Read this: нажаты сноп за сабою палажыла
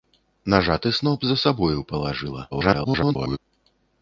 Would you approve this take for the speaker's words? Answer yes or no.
no